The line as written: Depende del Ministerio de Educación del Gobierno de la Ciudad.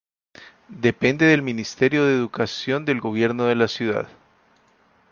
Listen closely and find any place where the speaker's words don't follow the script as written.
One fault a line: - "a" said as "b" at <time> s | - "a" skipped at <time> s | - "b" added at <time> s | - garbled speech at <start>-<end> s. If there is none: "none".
none